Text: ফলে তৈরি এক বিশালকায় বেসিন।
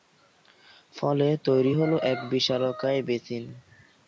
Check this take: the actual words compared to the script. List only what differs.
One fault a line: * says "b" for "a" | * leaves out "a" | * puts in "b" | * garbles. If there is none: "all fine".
* puts in "হলো"